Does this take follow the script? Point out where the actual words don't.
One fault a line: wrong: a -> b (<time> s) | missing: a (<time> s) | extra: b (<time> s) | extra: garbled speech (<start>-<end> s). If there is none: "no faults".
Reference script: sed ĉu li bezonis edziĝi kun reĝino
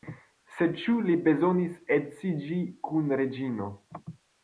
no faults